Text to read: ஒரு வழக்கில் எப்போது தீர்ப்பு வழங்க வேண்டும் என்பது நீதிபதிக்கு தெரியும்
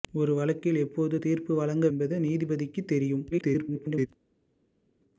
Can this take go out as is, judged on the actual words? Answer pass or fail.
fail